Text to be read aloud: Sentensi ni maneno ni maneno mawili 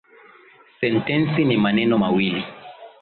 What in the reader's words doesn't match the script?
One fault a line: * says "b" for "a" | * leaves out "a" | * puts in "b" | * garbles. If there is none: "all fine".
* leaves out "ni maneno"